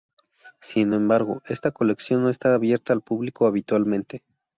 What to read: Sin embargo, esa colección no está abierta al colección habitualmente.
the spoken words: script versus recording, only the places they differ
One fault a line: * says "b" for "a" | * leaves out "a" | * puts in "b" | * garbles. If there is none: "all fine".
* says "esta" for "esa"
* says "público" for "colección"